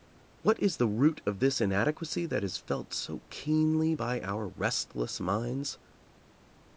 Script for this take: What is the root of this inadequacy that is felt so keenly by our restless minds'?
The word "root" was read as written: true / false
true